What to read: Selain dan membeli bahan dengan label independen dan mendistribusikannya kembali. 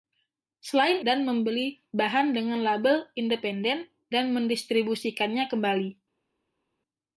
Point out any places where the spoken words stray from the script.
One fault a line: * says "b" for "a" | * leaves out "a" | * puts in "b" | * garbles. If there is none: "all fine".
all fine